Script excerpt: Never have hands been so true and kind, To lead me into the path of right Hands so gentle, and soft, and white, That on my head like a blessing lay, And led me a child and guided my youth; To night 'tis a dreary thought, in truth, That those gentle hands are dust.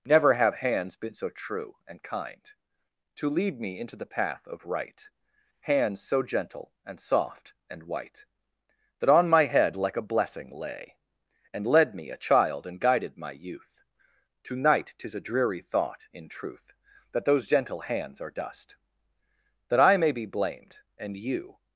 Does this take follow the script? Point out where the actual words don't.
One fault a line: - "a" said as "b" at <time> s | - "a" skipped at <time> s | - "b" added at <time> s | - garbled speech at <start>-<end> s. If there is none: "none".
- "That I may be blamed and you" added at 19.7 s